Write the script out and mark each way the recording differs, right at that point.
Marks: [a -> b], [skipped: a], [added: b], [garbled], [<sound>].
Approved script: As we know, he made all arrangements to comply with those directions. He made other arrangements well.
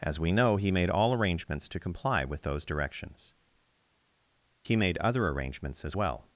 As we know, he made all arrangements to comply with those directions. He made other arrangements [added: as] well.